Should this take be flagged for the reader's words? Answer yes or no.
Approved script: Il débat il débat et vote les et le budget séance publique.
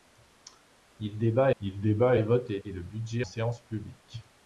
no